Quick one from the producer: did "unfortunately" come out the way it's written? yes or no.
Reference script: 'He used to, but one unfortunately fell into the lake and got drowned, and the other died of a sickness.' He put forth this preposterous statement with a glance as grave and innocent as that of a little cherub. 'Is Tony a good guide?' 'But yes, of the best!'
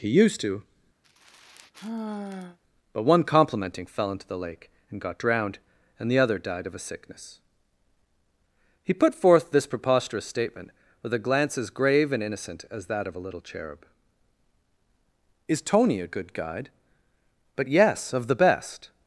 no